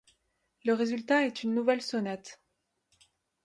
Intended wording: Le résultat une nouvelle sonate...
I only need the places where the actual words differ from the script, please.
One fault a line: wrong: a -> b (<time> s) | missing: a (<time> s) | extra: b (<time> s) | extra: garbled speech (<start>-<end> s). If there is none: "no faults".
extra: est (1.3 s)